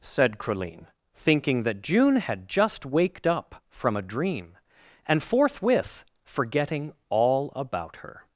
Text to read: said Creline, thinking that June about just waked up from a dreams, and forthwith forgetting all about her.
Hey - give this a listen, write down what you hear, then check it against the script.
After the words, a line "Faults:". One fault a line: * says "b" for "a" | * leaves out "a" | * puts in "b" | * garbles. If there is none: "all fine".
said Creline, thinking that June had just waked up from a dream, and forthwith forgetting all about her.
Faults:
* says "had" for "about"
* says "dream" for "dreams"